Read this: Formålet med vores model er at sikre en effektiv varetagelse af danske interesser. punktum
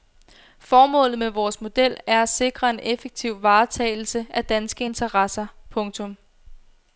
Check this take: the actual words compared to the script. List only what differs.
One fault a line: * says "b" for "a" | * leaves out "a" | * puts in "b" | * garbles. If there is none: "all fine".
all fine